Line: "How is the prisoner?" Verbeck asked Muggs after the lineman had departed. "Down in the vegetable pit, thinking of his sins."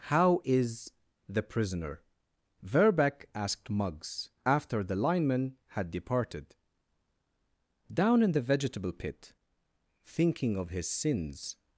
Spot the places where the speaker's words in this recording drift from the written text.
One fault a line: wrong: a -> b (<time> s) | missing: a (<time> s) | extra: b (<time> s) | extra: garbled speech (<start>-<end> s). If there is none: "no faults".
no faults